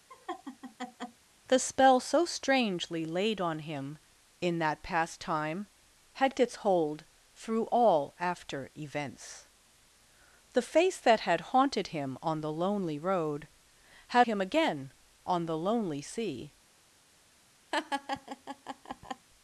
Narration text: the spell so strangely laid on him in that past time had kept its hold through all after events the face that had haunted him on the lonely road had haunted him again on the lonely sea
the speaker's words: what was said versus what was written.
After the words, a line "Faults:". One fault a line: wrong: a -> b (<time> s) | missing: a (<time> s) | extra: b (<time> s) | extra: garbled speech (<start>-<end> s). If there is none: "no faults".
the spell so strangely laid on him in that past time had its hold through all after events the face that had haunted him on the lonely road had him again on the lonely sea
Faults:
missing: kept (6.3 s)
missing: haunted (14.3 s)